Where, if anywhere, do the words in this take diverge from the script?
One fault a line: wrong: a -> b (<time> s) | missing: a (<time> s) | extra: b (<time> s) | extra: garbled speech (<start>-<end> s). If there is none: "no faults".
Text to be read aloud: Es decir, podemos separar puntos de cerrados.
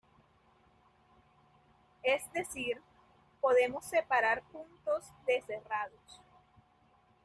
no faults